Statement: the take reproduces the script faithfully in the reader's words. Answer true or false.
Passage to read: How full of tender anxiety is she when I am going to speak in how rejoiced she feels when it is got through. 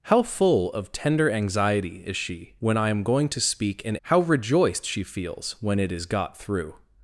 true